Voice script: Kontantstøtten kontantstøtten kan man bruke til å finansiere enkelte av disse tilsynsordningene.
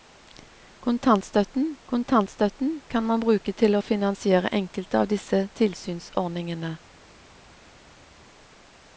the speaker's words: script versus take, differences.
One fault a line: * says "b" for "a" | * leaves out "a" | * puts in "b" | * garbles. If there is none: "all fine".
all fine